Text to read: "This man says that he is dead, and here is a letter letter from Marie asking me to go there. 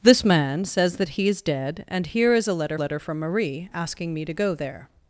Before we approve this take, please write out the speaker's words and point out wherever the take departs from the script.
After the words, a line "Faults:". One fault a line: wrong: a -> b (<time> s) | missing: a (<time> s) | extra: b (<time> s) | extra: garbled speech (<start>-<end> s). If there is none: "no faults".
"This man says that he is dead, and here is a letter letter from Marie asking me to go there.
Faults:
no faults